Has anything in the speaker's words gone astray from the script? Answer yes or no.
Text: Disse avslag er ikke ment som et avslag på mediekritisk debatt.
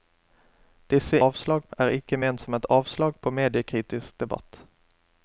no